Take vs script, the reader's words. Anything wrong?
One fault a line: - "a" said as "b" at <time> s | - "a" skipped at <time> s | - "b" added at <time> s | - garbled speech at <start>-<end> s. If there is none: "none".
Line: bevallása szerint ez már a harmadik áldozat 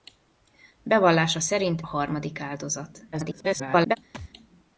- "ez már" skipped at 1.8 s
- garbled speech at 3.1-4.0 s